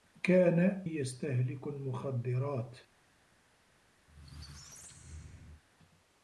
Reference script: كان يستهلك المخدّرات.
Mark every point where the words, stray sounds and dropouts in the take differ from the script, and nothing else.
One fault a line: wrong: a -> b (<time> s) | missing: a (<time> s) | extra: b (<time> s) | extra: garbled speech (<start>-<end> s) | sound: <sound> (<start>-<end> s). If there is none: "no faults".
sound: squeak (4.1-5.6 s)